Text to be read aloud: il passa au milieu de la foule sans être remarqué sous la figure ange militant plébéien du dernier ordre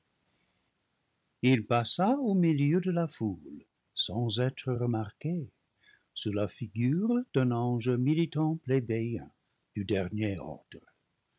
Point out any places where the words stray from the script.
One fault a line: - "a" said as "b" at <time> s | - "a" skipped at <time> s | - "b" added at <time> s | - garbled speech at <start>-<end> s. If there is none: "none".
- "d'un" added at 7.3 s